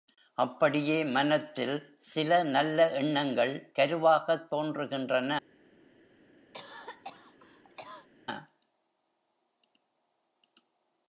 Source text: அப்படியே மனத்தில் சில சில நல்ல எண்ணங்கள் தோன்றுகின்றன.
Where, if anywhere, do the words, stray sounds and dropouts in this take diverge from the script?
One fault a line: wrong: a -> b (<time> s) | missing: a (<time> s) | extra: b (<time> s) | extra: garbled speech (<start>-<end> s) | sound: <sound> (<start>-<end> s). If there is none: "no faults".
missing: சில (2.4 s)
extra: கருவாகத் (3.8 s)
sound: cough (6.5-8.1 s)